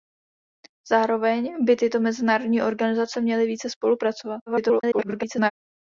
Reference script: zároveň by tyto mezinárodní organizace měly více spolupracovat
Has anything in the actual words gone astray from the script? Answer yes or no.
yes